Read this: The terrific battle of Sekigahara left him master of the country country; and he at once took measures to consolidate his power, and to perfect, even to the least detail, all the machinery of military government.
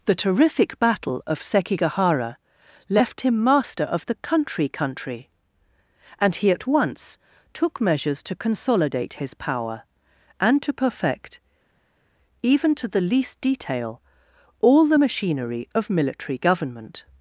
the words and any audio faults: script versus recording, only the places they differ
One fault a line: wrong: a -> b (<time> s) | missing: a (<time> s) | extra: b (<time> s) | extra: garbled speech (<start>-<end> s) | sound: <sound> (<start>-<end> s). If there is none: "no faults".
no faults